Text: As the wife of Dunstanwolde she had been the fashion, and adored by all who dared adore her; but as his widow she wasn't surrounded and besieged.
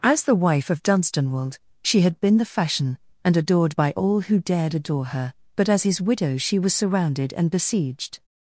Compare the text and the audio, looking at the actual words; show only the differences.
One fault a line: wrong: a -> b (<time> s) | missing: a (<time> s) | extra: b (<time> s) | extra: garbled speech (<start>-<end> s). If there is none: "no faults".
wrong: wasn't -> was (6.6 s)